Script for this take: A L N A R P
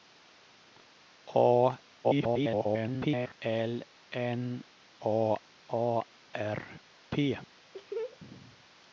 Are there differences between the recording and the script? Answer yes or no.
yes